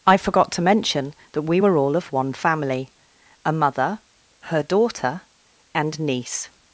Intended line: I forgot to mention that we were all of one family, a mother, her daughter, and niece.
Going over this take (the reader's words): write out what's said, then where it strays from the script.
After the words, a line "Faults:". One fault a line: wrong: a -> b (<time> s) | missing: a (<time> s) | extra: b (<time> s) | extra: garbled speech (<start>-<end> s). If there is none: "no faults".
I forgot to mention that we were all of one family, a mother, her daughter, and niece.
Faults:
no faults